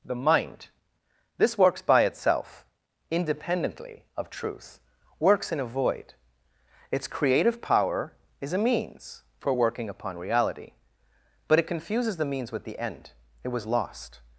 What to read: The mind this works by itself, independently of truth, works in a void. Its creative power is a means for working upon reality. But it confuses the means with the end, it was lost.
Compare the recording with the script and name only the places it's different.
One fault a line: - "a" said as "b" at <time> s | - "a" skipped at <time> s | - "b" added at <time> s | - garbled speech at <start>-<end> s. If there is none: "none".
none